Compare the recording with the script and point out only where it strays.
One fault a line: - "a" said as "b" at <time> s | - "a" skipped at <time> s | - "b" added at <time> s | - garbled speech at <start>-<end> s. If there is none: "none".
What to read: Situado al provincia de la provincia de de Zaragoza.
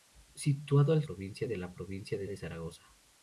none